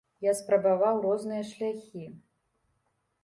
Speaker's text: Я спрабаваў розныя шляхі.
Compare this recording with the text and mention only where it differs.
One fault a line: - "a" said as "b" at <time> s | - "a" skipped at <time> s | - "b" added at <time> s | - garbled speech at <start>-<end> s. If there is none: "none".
none